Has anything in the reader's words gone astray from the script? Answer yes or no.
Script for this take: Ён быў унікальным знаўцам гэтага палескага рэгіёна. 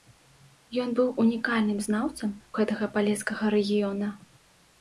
no